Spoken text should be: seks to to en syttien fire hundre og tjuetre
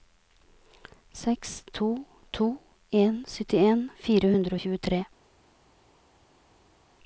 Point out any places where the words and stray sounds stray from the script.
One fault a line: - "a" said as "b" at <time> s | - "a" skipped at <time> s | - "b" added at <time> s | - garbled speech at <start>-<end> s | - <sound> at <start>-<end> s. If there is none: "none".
none